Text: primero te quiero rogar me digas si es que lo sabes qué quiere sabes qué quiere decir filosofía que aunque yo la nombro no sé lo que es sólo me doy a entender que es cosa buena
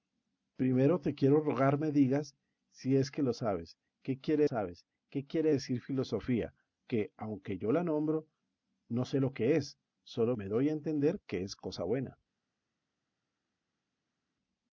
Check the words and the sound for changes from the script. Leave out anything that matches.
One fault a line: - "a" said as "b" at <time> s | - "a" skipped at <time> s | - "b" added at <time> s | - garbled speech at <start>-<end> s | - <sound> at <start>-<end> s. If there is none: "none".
none